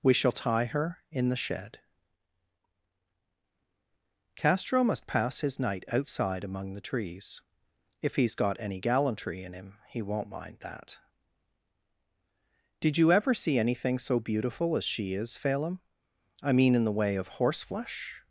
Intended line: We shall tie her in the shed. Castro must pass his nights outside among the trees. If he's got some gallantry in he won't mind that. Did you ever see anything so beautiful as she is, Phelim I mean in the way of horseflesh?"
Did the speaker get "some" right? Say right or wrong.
wrong